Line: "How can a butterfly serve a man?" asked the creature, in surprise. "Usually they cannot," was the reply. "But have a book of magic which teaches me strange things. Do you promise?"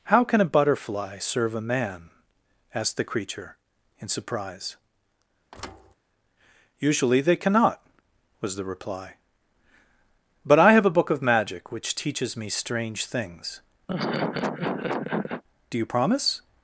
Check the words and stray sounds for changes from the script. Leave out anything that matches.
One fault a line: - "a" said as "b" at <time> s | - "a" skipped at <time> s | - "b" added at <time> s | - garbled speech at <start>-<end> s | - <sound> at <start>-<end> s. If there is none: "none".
- thud at 5.5-5.9 s
- "I" added at 10.6 s
- laugh at 13.9-15.4 s